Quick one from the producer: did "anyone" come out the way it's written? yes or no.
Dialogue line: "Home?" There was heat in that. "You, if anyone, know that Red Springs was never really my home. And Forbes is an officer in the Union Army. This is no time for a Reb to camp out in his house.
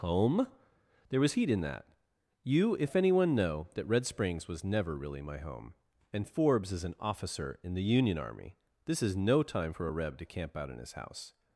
yes